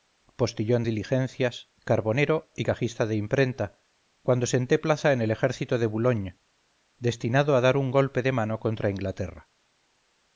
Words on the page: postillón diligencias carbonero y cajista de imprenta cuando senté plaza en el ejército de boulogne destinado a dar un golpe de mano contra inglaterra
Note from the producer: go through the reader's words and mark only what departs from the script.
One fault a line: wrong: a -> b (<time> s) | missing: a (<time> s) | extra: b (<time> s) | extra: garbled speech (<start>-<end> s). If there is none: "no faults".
no faults